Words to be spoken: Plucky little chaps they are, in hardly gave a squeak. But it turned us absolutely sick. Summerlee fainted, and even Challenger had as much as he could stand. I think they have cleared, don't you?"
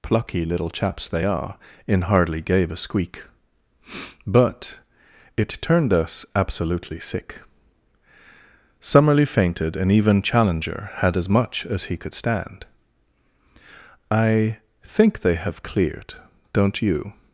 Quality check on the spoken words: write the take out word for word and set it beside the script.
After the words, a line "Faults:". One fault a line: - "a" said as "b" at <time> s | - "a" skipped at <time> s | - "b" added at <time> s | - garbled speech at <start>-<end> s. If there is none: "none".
Plucky little chaps they are, in hardly gave a squeak. But it turned us absolutely sick. Summerlee fainted, and even Challenger had as much as he could stand. I think they have cleared, don't you?"
Faults:
none